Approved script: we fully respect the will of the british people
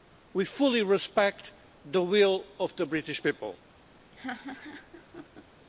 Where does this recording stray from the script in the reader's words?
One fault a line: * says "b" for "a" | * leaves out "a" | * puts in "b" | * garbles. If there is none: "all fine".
all fine